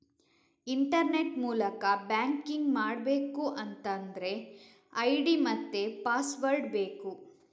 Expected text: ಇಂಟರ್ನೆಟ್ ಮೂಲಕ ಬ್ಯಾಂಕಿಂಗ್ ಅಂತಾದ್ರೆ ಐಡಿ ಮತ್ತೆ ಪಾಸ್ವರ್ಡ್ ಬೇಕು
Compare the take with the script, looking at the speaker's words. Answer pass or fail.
fail